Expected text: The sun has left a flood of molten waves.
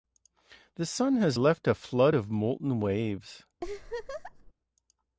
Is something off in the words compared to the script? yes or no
no